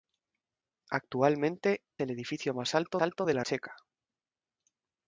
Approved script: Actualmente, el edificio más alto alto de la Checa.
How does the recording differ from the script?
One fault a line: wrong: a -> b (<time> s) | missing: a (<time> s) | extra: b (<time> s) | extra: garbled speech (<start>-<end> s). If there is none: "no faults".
no faults